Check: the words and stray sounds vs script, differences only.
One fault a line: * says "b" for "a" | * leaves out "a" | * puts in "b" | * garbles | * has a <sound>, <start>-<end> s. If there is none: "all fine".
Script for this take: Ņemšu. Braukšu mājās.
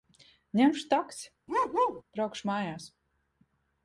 * puts in "taksi"
* has a bark, 1.5-2.0 s